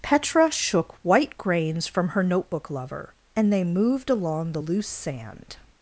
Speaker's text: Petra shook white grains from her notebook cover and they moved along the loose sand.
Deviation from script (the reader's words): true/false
true